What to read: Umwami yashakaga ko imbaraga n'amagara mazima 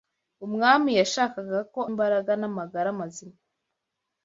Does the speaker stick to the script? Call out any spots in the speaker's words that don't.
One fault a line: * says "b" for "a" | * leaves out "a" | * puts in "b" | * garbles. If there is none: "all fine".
all fine